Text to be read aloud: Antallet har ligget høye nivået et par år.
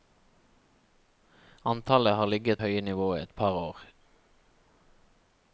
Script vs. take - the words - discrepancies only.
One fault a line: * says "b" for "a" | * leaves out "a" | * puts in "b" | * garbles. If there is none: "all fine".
all fine